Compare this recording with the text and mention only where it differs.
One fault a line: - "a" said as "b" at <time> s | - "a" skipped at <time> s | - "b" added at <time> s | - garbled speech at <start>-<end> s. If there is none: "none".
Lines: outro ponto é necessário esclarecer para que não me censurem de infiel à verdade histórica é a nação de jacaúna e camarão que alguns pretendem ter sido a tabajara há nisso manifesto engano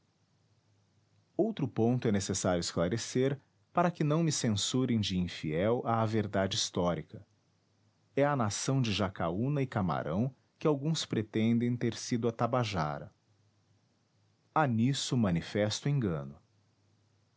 none